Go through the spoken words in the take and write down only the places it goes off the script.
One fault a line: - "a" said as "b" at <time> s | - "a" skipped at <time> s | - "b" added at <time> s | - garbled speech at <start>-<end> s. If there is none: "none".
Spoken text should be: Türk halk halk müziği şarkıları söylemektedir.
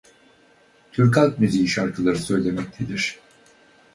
- "halk" skipped at 1.4 s